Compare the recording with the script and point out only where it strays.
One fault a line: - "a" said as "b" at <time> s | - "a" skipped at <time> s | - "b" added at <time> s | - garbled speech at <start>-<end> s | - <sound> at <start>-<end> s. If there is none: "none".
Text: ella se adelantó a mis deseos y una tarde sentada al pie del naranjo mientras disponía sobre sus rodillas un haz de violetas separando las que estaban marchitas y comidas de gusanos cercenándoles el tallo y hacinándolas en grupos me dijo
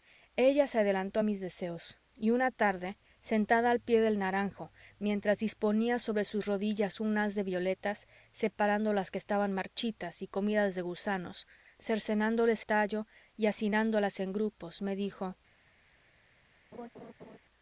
- "el" skipped at 12.6 s
- laugh at 16.7-17.4 s